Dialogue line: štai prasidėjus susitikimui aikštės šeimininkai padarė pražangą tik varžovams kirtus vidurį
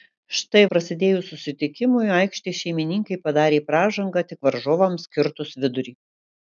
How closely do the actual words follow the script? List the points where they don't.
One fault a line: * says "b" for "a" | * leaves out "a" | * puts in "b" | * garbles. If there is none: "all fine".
all fine